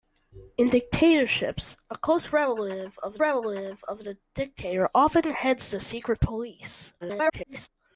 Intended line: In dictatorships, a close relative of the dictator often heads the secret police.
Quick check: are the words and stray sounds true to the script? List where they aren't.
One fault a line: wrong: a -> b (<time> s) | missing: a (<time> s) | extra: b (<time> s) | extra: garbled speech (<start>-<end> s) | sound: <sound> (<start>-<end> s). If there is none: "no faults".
extra: relative of (3.2 s)
extra: garbled speech (7.0-7.7 s)